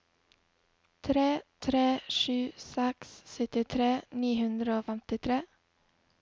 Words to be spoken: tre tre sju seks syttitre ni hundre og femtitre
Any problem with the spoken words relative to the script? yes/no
no